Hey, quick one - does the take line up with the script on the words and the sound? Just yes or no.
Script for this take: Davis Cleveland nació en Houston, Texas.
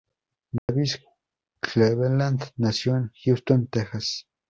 no